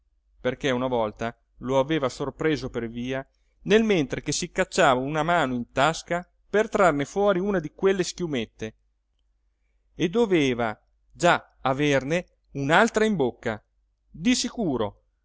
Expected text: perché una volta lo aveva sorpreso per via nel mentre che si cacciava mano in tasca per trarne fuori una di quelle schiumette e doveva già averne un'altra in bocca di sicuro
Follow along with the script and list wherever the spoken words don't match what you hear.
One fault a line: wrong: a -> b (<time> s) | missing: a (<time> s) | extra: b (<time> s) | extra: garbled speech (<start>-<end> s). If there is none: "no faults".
extra: una (5.0 s)